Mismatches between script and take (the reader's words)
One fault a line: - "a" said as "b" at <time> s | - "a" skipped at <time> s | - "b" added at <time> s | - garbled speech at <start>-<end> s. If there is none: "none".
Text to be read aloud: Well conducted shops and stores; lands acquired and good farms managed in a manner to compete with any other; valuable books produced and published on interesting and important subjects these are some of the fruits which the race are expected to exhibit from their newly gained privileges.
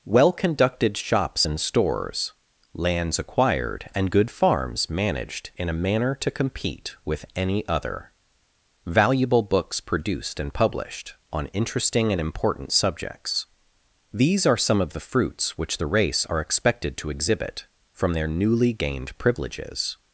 none